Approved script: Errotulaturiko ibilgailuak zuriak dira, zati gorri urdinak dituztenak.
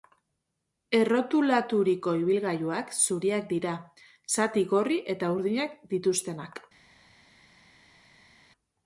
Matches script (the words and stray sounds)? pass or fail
fail